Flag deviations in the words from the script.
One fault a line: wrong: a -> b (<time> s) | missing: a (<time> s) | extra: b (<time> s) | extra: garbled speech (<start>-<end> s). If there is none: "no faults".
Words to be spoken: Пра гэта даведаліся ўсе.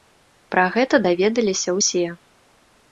no faults